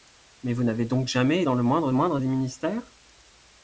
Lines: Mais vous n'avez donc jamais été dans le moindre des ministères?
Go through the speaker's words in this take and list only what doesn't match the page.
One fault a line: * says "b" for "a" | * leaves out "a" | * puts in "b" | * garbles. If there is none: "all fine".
* leaves out "été"
* puts in "moindre"